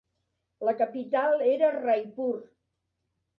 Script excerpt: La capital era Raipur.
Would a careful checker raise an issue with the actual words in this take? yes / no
no